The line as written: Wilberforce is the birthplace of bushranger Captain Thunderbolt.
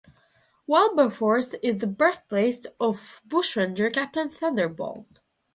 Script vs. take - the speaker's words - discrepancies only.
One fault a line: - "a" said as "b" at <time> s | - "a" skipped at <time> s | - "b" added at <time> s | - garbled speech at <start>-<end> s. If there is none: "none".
none